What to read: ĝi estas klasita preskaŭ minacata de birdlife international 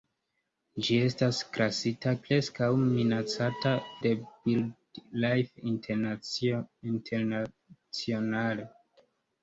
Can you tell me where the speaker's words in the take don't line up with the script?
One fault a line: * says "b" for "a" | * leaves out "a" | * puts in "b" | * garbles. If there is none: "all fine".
all fine